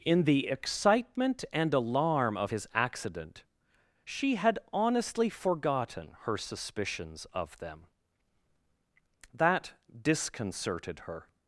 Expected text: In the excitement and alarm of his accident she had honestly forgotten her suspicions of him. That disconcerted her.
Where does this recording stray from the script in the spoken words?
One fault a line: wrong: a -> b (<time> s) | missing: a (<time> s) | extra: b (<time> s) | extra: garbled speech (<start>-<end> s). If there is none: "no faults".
wrong: him -> them (7.6 s)